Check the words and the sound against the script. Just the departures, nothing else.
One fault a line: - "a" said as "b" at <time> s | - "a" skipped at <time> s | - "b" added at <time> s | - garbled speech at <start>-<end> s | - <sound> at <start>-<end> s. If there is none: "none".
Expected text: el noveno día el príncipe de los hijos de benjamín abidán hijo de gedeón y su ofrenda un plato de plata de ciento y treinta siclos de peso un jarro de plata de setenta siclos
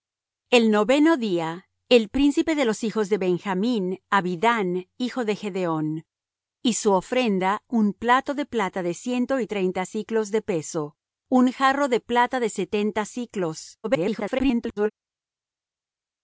- garbled speech at 13.8-14.9 s